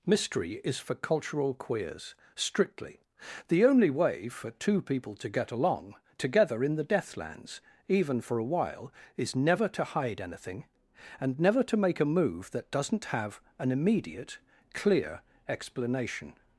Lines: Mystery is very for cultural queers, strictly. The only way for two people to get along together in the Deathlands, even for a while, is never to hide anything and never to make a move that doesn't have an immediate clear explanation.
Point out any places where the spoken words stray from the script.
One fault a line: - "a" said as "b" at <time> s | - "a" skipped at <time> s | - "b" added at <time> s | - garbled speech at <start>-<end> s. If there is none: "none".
- "very" skipped at 0.8 s